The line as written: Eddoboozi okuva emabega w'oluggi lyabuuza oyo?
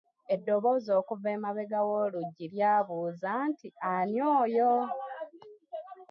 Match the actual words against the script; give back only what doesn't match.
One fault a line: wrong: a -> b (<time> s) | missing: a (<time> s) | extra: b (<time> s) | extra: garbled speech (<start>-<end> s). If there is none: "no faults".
extra: nti ani (3.5 s)